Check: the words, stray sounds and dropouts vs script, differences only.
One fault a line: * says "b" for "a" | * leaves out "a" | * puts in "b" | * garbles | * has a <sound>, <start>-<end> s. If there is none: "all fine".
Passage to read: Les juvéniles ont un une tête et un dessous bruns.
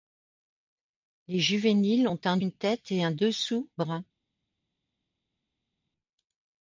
all fine